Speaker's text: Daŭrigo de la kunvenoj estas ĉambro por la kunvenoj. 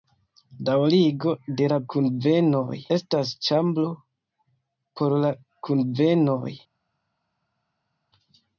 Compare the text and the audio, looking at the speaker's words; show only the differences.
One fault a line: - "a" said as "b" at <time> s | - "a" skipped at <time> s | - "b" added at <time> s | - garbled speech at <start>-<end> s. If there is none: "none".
none